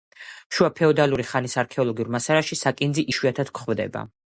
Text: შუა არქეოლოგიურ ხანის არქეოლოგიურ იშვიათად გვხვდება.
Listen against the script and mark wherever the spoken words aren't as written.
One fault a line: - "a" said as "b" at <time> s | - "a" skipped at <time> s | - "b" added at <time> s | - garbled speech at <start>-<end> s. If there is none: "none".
- "არქეოლოგიურ" said as "ფეოდალური" at 0.8 s
- "მასალაში საკინძი" added at 2.2 s